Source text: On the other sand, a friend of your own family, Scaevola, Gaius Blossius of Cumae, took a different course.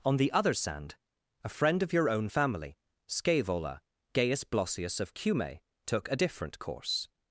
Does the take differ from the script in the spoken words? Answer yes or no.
no